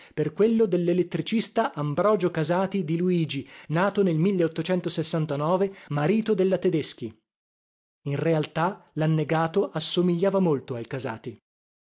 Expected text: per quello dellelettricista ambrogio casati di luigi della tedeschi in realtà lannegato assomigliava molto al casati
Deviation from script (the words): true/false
true